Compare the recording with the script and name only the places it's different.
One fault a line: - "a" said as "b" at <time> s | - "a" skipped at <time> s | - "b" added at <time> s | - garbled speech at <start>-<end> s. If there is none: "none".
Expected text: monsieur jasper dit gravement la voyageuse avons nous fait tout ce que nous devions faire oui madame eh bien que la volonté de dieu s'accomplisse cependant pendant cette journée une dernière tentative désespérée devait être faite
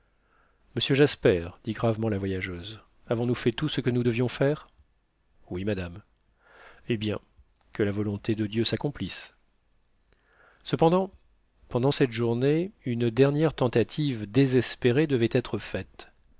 none